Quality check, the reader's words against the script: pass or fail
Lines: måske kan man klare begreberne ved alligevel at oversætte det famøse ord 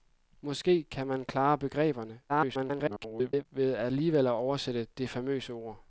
fail